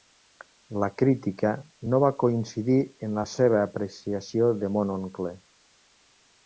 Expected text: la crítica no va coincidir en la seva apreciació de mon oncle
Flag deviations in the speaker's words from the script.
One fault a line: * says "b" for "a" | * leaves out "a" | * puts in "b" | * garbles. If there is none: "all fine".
all fine